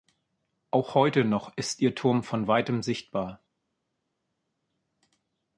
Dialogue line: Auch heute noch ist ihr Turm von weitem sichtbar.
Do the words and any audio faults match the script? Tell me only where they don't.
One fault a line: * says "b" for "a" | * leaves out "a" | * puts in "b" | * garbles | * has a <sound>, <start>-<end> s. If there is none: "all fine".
all fine